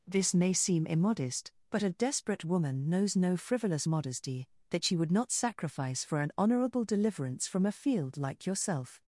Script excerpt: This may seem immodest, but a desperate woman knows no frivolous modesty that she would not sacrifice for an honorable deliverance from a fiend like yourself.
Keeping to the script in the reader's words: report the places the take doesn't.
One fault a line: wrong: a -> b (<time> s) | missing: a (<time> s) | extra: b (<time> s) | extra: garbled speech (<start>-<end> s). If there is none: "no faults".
wrong: fiend -> field (7.7 s)